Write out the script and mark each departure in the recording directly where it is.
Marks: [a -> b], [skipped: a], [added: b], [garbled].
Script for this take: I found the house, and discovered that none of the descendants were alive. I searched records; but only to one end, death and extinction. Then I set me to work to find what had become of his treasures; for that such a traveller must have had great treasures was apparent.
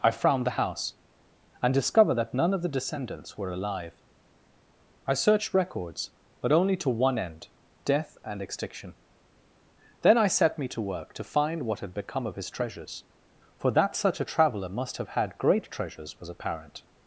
I [found -> frowned] the house, and discovered that none of the descendants were alive. I searched records; but only to one end, death and extinction. Then I set me to work to find what had become of his treasures; for that such a traveller must have had great treasures was apparent.